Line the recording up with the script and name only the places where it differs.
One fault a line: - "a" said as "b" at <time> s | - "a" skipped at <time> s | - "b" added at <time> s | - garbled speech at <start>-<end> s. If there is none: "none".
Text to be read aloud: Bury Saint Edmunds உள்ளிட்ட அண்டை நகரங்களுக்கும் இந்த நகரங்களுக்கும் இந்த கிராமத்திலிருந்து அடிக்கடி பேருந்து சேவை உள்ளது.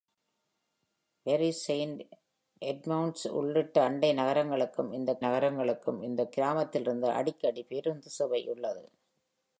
none